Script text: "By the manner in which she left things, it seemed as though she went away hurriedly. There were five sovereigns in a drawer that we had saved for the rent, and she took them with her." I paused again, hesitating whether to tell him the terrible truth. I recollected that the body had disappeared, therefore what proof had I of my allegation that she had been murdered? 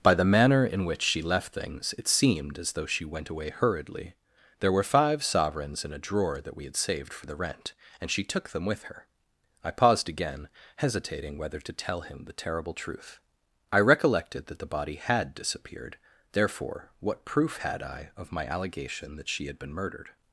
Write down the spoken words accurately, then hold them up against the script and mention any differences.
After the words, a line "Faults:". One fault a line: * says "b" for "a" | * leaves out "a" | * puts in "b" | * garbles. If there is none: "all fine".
"By the manner in which she left things, it seemed as though she went away hurriedly. There were five sovereigns in a drawer that we had saved for the rent, and she took them with her." I paused again, hesitating whether to tell him the terrible truth. I recollected that the body had disappeared, therefore what proof had I of my allegation that she had been murdered?
Faults:
all fine